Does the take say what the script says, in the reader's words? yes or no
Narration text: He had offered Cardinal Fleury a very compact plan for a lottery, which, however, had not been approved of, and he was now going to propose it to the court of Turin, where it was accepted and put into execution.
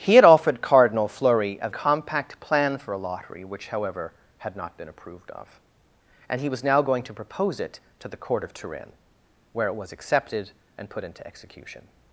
no